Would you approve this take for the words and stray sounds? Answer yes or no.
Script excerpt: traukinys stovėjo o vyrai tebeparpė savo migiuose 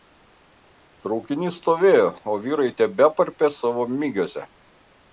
yes